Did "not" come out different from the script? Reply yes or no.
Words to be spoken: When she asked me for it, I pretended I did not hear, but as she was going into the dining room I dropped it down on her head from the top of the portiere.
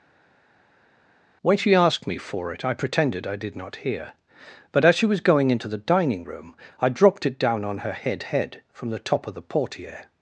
no